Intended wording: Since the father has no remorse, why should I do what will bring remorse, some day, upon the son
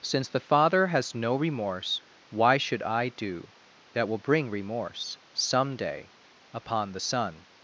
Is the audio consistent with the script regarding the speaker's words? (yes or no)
no